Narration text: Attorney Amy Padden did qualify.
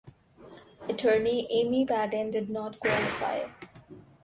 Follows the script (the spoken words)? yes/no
no